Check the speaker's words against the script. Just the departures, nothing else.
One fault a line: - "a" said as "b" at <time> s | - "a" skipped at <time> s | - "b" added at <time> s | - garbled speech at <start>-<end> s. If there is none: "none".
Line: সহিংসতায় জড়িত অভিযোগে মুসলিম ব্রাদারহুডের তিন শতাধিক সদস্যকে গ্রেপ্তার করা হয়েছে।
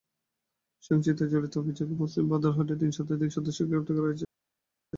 none